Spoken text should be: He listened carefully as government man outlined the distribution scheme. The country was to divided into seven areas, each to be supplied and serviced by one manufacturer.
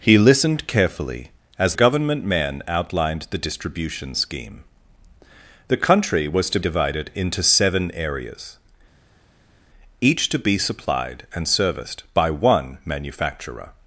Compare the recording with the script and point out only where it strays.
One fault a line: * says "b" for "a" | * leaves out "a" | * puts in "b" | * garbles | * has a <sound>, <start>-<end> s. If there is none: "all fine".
all fine